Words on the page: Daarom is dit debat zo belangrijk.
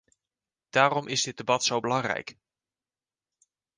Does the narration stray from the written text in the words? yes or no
no